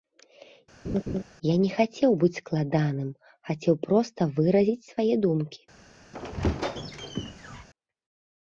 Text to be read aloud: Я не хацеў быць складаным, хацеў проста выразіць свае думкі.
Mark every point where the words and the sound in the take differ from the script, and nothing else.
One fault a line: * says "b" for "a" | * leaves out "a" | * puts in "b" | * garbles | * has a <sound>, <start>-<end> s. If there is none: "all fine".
* has a laugh, 0.8-1.2 s
* has a squeak, 6.1-7.7 s